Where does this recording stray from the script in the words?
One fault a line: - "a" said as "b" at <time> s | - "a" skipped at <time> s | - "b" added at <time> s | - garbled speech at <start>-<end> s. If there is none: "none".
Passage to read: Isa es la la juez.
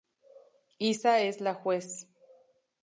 - "la" skipped at 1.5 s